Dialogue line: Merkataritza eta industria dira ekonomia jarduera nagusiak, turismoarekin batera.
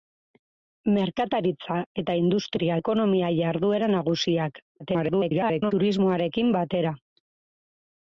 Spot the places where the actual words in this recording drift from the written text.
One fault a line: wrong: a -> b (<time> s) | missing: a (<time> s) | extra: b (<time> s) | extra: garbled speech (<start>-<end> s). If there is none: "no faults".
missing: dira (2.8 s)
extra: garbled speech (4.8-5.7 s)